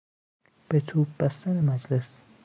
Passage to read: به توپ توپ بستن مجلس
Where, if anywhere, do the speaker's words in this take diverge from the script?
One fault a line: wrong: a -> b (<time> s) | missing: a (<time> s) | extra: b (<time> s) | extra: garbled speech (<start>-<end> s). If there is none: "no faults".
missing: توپ (1.1 s)